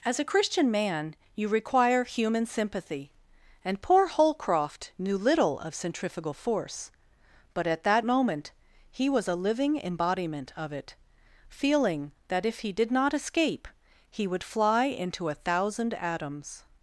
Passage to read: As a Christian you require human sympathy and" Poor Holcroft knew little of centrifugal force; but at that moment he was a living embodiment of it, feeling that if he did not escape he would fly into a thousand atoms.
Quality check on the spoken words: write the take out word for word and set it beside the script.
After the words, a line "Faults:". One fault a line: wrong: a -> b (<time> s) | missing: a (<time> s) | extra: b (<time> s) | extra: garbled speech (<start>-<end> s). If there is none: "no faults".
As a Christian man, you require human sympathy and" Poor Holcroft knew little of centrifugal force; but at that moment he was a living embodiment of it, feeling that if he did not escape he would fly into a thousand atoms.
Faults:
extra: man (0.7 s)